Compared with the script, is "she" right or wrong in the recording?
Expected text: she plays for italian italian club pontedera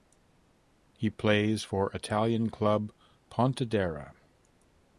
wrong